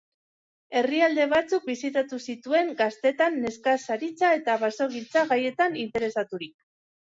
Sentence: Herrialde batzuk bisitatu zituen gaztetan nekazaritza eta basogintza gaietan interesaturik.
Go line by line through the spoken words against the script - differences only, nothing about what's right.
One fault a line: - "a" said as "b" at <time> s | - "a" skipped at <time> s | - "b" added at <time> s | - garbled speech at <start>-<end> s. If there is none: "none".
none